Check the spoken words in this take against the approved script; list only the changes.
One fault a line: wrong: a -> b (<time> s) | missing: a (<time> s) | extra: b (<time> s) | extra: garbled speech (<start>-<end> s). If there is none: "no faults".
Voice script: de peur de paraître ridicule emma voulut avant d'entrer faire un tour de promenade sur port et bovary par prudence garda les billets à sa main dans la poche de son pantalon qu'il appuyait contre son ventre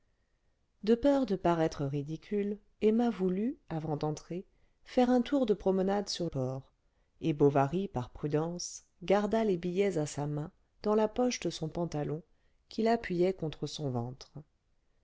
no faults